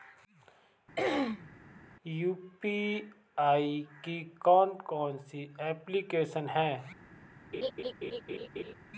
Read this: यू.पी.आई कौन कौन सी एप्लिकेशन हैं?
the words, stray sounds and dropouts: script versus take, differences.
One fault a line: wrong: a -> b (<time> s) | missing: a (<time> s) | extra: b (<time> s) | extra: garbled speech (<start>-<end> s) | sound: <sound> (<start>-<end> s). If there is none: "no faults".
sound: throat clearing (1.0-1.5 s)
extra: की (4.0 s)
sound: laugh (7.5-8.7 s)